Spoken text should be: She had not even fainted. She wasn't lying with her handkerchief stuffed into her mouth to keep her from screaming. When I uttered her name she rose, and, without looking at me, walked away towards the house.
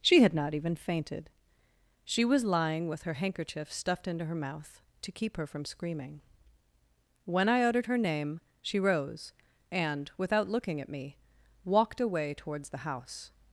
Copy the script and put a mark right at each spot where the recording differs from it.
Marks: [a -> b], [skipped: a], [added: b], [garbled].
She had not even fainted. She [wasn't -> was] lying with her handkerchief stuffed into her mouth to keep her from screaming. When I uttered her name she rose, and, without looking at me, walked away towards the house.